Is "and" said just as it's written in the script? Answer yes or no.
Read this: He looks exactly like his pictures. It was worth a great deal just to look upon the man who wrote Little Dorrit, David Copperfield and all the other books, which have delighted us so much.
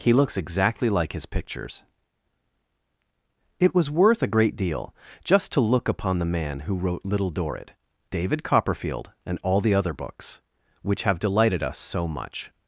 yes